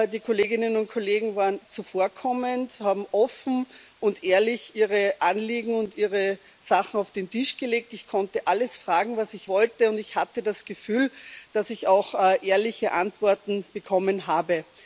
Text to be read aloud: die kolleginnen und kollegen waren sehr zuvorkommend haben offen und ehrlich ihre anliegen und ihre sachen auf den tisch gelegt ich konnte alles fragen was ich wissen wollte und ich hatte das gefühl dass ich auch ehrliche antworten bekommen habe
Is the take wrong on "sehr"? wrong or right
wrong